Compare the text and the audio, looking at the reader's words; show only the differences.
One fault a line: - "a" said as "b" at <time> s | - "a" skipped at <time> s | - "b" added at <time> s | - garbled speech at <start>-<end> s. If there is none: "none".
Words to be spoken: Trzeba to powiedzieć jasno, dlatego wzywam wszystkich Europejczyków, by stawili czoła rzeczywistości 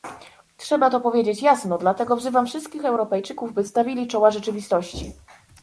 none